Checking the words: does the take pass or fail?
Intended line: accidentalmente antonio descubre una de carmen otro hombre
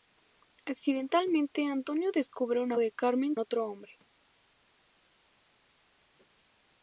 pass